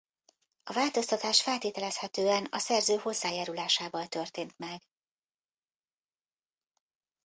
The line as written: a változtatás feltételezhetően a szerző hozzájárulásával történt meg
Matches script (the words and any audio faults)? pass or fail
pass